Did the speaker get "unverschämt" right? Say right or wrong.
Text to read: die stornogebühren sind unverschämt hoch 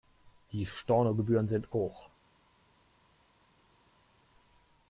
wrong